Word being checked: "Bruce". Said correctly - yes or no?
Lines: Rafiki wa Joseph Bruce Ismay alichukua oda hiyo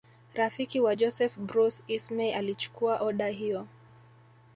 yes